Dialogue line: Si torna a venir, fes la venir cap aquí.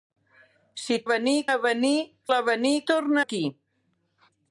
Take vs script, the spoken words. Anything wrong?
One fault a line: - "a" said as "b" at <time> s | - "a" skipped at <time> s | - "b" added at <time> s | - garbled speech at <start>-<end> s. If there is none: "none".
- "torna" said as "venir" at 1.1 s
- "fes" skipped at 1.9 s
- "cap" said as "torna" at 2.9 s